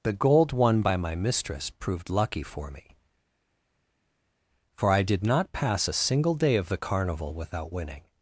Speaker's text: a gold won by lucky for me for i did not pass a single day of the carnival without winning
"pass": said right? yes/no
yes